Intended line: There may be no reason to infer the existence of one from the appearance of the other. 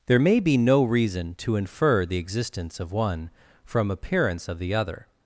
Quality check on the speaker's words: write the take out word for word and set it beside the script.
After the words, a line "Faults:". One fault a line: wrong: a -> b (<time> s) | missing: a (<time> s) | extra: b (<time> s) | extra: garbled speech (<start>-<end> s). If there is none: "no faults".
There may be no reason to infer the existence of one from appearance of the other.
Faults:
missing: the (3.9 s)